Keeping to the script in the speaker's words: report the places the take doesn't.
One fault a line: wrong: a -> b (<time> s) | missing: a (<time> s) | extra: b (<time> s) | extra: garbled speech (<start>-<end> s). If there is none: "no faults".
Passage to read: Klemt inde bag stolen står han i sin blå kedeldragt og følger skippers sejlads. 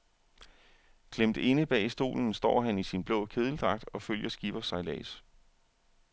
no faults